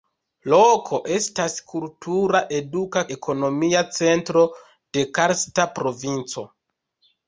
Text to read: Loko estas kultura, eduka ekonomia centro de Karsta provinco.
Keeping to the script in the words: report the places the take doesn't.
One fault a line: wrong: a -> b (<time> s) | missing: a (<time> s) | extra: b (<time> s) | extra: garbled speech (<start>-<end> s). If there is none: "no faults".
no faults